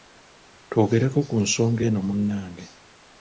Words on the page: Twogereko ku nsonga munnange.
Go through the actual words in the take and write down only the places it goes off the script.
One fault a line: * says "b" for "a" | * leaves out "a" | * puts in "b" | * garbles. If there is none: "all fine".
* puts in "eno"